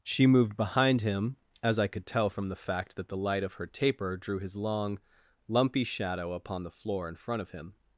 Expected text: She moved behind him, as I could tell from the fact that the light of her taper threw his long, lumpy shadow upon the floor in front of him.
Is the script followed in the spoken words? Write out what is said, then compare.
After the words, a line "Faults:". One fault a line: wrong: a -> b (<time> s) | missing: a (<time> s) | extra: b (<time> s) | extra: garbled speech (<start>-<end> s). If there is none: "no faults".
She moved behind him, as I could tell from the fact that the light of her taper drew his long, lumpy shadow upon the floor in front of him.
Faults:
wrong: threw -> drew (4.2 s)